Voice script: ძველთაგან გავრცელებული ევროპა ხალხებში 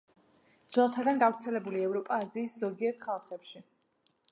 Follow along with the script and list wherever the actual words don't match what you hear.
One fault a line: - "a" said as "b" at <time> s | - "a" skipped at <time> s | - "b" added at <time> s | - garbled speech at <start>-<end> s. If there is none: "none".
- "აზიის ზოგიერთ" added at 2.2 s